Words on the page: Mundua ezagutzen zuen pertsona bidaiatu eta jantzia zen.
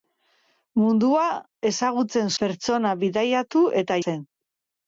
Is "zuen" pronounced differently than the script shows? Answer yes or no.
yes